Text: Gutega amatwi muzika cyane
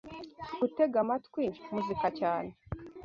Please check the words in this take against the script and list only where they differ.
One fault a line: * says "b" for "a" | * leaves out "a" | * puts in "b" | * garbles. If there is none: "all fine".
all fine